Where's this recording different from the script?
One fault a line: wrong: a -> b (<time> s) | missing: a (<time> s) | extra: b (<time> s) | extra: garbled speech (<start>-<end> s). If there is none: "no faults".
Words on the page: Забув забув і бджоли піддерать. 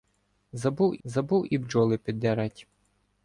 no faults